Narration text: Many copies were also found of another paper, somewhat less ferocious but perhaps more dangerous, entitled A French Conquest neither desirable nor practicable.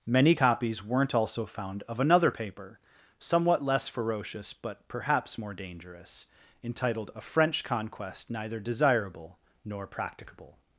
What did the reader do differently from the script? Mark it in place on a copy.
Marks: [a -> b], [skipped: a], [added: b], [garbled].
Many copies [were -> weren't] also found of another paper, somewhat less ferocious but perhaps more dangerous, entitled A French Conquest neither desirable nor practicable.